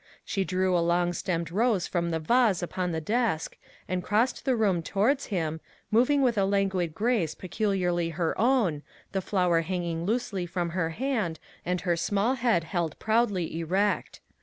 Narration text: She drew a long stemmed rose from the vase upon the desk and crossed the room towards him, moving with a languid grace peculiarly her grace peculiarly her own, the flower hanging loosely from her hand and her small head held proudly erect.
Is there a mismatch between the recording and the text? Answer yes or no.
yes